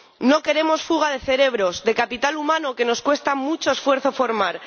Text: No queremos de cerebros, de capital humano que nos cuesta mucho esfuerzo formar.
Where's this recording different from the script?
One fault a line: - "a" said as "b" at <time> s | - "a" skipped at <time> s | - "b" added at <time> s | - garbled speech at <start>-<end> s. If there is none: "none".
- "fuga" added at 0.8 s